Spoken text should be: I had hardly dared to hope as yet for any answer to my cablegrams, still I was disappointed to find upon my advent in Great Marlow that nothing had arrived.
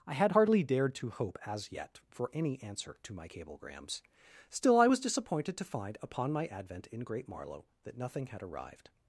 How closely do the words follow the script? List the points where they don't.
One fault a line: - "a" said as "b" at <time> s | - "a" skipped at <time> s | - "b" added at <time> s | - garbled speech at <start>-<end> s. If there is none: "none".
none